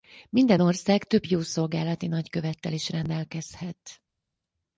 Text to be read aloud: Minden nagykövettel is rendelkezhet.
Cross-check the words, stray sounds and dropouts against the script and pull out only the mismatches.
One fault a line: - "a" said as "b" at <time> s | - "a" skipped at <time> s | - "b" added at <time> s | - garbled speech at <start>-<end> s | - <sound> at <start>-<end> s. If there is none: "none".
- "ország több jószolgálati" added at 0.6 s